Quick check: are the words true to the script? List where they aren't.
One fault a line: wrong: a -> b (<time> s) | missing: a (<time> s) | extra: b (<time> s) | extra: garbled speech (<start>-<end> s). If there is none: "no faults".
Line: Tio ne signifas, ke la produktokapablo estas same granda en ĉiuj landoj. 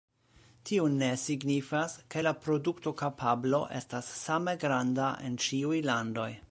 no faults